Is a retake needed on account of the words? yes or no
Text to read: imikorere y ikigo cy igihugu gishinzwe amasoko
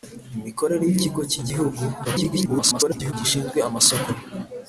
yes